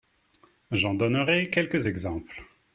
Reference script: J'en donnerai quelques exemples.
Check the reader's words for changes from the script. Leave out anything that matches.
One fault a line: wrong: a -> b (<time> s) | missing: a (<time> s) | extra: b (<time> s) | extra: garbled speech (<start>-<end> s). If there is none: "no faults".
no faults